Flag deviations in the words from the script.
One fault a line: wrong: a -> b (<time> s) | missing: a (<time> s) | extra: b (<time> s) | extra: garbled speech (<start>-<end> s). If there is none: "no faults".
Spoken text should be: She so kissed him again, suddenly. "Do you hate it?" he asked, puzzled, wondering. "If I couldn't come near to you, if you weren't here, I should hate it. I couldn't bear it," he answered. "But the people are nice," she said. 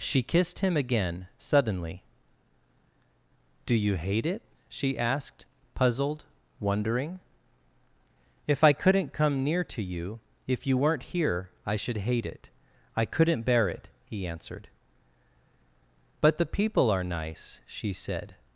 missing: so (0.2 s)
wrong: he -> she (4.7 s)